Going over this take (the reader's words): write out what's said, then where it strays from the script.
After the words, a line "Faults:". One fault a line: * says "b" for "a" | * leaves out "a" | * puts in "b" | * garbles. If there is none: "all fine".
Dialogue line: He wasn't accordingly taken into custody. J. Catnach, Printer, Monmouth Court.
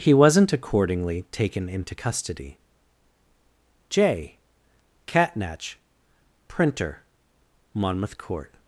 He wasn't accordingly taken into custody. J. Catnach, Printer, Monmouth Court.
Faults:
all fine